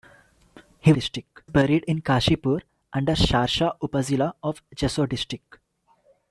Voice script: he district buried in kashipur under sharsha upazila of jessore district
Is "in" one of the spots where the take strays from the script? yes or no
no